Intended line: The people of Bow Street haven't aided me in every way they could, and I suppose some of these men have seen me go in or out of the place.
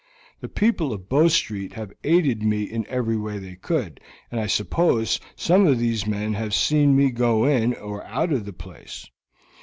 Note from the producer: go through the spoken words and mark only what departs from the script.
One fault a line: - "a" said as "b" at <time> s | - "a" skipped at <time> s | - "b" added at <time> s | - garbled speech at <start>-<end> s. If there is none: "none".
- "haven't" said as "have" at 1.7 s